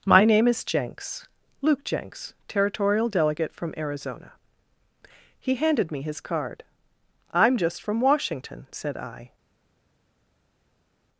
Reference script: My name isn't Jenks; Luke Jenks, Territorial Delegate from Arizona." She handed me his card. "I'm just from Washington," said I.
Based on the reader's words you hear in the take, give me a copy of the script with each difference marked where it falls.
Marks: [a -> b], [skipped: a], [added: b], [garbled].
My name [isn't -> is] Jenks; Luke Jenks, Territorial Delegate from Arizona." [She -> He] handed me his card. "I'm just from Washington," said I.